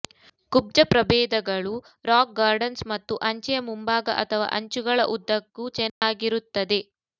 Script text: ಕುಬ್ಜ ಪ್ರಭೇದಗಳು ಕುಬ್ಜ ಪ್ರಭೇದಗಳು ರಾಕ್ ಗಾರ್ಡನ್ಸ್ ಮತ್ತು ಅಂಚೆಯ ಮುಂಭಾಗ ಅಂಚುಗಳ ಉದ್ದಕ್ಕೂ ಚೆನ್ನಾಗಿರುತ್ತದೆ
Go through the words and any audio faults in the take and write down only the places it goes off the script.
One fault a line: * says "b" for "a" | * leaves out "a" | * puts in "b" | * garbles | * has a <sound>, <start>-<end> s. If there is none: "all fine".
* leaves out "ಕುಬ್ಜ ಪ್ರಭೇದಗಳು"
* puts in "ಅಥವಾ"
* has a dropout, 5.9-6.0 s